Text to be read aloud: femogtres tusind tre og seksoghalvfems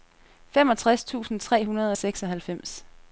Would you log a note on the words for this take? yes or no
yes